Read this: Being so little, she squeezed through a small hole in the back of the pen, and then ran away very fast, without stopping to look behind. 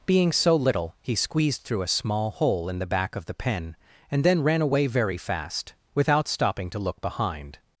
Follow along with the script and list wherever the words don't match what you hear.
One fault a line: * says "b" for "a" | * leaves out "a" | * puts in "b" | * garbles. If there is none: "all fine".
* says "he" for "she"